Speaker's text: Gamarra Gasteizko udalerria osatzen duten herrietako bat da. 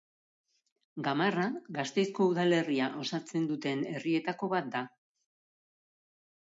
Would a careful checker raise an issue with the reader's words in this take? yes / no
no